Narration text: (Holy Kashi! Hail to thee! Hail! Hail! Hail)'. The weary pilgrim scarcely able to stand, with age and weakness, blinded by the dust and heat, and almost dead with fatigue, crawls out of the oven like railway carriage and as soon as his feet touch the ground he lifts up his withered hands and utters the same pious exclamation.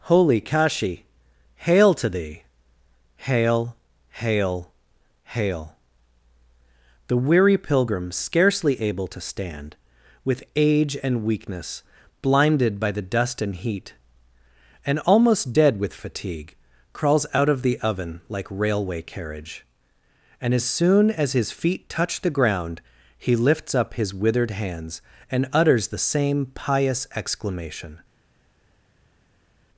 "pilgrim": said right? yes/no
yes